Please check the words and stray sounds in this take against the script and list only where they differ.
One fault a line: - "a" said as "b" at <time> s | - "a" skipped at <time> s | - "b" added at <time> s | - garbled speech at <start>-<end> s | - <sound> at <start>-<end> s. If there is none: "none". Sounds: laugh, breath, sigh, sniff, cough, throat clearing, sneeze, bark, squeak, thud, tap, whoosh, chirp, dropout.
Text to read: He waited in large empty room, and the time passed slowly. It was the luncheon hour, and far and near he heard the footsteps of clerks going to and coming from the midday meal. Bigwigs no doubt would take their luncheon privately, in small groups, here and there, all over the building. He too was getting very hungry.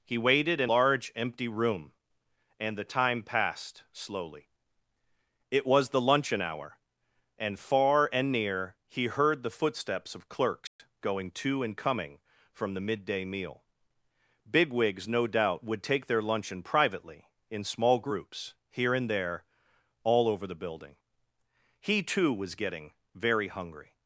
- dropout at 10.7-10.8 s